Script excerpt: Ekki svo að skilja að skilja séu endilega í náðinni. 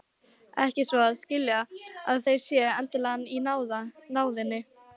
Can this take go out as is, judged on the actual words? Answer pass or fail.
fail